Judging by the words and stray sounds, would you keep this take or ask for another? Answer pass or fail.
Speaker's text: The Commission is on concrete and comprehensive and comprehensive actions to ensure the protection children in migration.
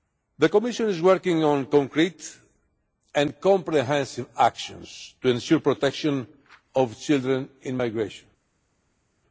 fail